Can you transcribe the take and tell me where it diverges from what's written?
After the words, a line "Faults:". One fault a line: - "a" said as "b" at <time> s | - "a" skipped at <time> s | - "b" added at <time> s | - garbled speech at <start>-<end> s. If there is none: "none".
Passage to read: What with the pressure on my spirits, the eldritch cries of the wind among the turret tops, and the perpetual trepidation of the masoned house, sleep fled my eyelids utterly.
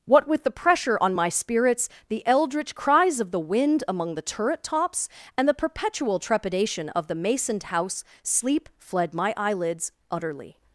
What with the pressure on my spirits, the eldritch cries of the wind among the turret tops, and the perpetual trepidation of the masoned house, sleep fled my eyelids utterly.
Faults:
none